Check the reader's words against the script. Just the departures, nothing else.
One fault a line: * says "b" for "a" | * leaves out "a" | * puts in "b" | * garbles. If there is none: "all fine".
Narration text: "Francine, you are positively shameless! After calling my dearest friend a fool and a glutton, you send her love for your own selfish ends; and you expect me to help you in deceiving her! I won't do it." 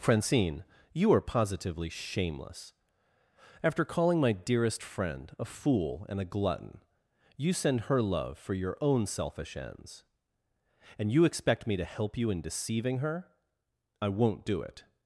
all fine